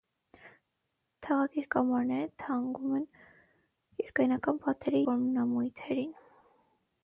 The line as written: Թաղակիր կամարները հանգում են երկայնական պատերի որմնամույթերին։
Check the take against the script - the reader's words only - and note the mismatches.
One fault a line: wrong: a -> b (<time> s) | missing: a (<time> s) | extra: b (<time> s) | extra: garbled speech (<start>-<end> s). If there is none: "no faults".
no faults